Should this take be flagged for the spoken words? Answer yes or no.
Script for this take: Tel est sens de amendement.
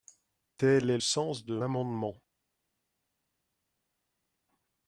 no